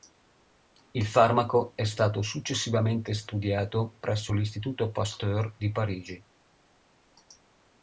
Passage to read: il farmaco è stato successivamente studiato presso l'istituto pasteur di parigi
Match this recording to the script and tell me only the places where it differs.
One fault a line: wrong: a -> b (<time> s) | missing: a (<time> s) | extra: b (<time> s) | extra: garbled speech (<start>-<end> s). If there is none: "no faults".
no faults